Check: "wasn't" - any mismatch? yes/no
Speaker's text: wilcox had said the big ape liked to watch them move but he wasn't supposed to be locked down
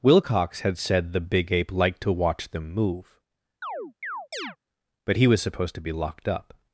yes